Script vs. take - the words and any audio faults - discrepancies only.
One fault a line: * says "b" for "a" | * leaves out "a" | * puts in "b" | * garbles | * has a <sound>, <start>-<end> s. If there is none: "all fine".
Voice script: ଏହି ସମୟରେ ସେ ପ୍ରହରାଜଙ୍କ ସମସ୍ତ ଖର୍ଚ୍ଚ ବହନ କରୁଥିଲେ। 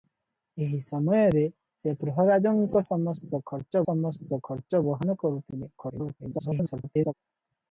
* puts in "ସମସ୍ତ ଖର୍ଚ୍ଚ"
* garbles